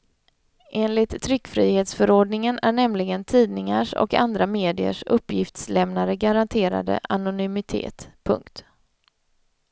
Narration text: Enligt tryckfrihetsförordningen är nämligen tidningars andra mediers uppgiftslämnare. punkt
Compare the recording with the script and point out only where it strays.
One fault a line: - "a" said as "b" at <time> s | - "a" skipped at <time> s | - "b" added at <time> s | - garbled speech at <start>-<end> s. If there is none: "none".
- "och" added at 3.9 s
- "garanterade anonymitet" added at 6.2 s